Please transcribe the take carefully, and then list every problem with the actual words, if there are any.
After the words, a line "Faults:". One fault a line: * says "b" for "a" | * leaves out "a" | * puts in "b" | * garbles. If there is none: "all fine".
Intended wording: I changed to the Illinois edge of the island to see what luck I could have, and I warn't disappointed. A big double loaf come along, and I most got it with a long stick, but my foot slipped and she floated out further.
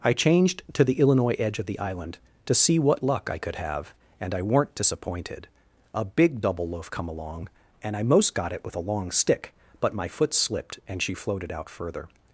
I changed to the Illinois edge of the island to see what luck I could have, and I weren't disappointed. A big double loaf come along, and I most got it with a long stick, but my foot slipped and she floated out further.
Faults:
* says "weren't" for "warn't"